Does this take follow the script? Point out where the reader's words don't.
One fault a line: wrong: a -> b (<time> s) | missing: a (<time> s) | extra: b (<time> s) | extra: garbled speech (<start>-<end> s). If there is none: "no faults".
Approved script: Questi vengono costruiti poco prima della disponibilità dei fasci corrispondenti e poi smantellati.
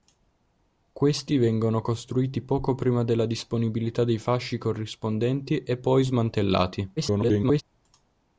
extra: garbled speech (7.0-7.6 s)